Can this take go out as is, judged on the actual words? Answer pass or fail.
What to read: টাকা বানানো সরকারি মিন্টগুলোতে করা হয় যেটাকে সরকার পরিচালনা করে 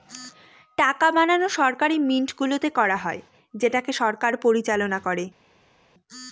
pass